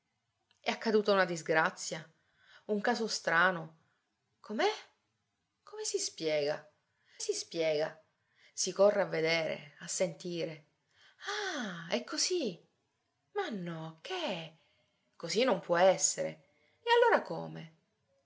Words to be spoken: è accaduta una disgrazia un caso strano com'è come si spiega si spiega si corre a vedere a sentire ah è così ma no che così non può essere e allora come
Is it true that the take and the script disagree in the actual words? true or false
false